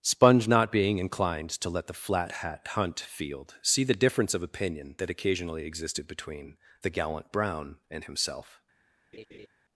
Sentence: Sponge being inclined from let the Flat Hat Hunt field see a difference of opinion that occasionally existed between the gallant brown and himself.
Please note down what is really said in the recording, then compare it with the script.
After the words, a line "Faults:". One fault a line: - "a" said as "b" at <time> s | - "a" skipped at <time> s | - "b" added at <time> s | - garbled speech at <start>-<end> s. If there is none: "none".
Sponge not being inclined to let the Flat Hat Hunt field see the difference of opinion that occasionally existed between the gallant brown and himself.
Faults:
- "not" added at 0.5 s
- "from" said as "to" at 1.5 s
- "a" said as "the" at 3.8 s